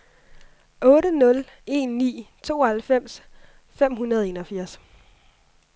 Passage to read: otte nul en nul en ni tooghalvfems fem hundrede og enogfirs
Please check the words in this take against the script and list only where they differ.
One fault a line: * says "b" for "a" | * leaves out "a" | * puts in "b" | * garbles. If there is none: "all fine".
* leaves out "nul en"